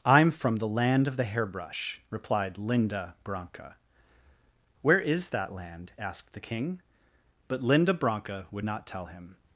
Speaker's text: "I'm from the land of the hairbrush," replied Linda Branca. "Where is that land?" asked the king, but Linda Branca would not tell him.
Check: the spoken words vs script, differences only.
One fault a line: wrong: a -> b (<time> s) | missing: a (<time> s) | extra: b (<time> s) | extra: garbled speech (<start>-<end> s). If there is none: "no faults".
no faults